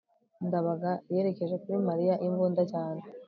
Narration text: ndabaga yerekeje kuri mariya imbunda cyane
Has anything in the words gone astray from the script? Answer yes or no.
no